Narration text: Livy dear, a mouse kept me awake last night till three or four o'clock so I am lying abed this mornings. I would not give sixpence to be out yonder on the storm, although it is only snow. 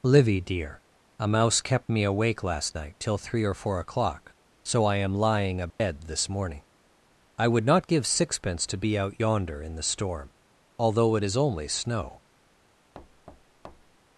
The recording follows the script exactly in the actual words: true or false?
false